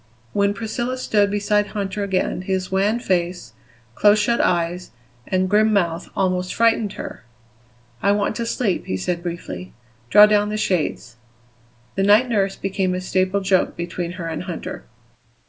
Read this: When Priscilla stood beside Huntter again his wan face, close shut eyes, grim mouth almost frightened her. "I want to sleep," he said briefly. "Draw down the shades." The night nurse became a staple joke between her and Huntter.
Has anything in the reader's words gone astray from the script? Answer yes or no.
yes